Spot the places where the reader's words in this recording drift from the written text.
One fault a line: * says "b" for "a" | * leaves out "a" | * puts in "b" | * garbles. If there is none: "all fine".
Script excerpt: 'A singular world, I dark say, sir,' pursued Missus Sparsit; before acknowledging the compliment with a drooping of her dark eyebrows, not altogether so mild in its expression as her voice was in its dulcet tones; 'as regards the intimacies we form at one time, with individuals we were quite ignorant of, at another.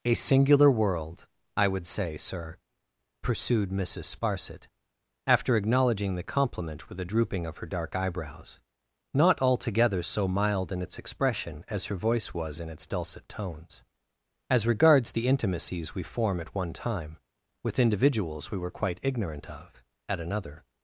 * says "would" for "dark"
* says "after" for "before"